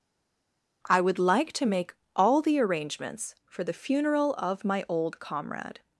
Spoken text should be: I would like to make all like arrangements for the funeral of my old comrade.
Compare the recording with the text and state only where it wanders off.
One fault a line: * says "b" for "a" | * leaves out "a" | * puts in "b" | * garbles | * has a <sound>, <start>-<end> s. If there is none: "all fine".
* says "the" for "like"